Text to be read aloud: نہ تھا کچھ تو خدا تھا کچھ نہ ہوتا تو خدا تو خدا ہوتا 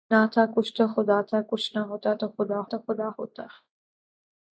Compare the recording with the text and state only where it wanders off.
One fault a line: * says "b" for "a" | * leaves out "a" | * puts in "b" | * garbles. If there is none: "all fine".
all fine